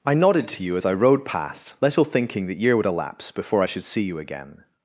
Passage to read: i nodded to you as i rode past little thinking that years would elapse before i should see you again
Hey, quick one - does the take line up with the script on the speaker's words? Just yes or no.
no